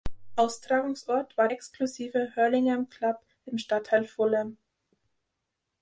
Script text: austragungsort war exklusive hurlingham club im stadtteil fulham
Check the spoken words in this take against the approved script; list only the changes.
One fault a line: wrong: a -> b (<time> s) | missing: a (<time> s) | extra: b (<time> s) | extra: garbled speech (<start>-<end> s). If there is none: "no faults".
no faults